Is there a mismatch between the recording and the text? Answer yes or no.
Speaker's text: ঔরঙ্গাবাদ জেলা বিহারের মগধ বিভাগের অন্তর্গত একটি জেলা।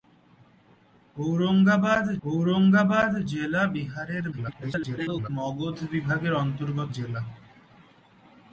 yes